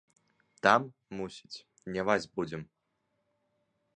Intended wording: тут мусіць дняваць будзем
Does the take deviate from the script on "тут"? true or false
true